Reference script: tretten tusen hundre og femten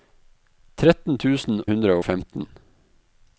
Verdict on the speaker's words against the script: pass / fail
pass